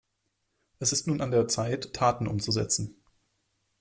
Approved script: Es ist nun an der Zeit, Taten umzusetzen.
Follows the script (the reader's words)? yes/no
yes